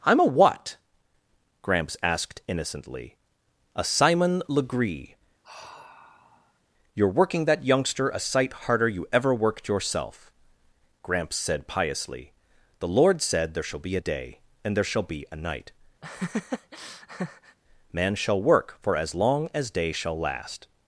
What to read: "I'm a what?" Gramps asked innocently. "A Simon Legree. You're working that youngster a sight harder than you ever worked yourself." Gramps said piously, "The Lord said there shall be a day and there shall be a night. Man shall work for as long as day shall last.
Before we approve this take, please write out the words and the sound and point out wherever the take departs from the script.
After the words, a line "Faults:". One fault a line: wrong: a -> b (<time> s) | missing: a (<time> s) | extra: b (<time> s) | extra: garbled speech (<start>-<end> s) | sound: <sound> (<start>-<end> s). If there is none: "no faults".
"I'm a what?" Gramps asked innocently. "A Simon Legree. You're working that youngster a sight harder you ever worked yourself." Gramps said piously, "The Lord said there shall be a day and there shall be a night. Man shall work for as long as day shall last.
Faults:
sound: sigh (5.4-6.6 s)
missing: than (8.9 s)
sound: laugh (16.0-17.6 s)